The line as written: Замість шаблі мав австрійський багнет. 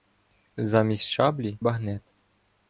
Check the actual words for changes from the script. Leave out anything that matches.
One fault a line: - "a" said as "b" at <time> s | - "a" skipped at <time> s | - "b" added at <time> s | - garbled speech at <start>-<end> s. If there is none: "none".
- "мав австрійський" skipped at 1.6 s